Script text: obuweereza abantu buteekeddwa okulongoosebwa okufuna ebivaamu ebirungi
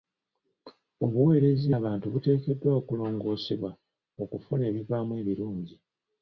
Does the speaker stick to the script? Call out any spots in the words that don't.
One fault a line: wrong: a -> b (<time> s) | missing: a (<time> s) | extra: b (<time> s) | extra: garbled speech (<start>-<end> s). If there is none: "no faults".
no faults